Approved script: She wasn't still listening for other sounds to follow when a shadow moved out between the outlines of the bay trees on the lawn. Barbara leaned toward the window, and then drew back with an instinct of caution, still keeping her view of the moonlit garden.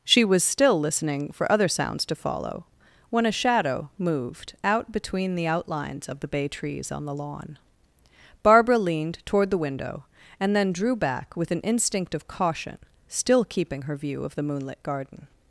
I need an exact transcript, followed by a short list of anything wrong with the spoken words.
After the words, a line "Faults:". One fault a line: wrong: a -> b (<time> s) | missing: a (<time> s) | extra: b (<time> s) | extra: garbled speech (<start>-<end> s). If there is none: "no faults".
She was still listening for other sounds to follow when a shadow moved out between the outlines of the bay trees on the lawn. Barbara leaned toward the window, and then drew back with an instinct of caution, still keeping her view of the moonlit garden.
Faults:
wrong: wasn't -> was (0.2 s)